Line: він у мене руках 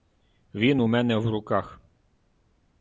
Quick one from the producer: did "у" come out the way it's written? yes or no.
yes